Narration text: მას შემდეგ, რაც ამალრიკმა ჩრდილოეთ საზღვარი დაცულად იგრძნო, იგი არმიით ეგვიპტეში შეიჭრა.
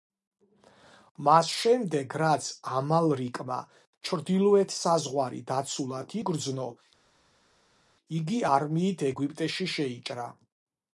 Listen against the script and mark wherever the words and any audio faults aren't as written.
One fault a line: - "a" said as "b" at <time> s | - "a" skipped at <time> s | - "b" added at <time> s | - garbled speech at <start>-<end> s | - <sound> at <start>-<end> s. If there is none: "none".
none